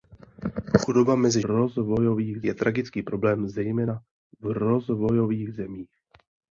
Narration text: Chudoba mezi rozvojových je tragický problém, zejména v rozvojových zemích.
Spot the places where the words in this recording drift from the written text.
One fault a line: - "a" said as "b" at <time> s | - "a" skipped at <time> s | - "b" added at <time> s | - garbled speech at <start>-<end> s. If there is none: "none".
none